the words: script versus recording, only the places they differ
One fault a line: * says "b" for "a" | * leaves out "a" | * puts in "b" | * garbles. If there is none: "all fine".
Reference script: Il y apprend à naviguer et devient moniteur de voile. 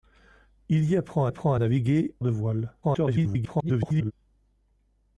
* puts in "apprend"
* leaves out "et devient moniteur"
* garbles